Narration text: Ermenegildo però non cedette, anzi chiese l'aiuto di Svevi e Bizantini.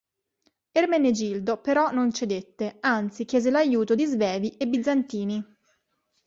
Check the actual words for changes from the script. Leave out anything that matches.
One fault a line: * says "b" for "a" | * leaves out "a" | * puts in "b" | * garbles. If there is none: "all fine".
all fine